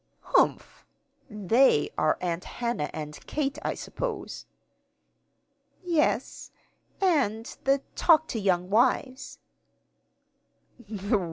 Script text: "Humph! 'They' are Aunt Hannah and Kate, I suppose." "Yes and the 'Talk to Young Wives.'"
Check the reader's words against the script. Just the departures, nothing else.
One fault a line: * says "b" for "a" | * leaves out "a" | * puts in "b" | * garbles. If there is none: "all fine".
all fine